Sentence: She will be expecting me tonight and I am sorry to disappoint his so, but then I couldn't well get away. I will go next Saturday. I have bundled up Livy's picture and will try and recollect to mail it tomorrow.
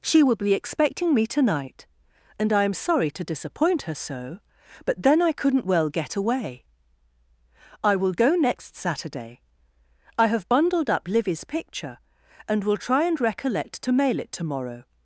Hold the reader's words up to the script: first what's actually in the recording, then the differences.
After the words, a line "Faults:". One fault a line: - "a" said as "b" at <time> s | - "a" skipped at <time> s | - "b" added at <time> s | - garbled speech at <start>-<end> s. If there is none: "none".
She will be expecting me tonight and I am sorry to disappoint her so, but then I couldn't well get away. I will go next Saturday. I have bundled up Livy's picture and will try and recollect to mail it tomorrow.
Faults:
- "his" said as "her" at 3.8 s